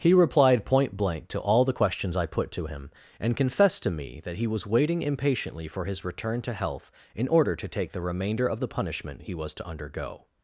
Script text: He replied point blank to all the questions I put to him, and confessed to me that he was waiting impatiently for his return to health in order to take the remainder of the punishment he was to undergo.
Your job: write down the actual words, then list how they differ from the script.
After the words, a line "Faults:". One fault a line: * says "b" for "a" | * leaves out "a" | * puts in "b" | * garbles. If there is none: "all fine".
He replied point blank to all the questions I put to him, and confessed to me that he was waiting impatiently for his return to health in order to take the remainder of the punishment he was to undergo.
Faults:
all fine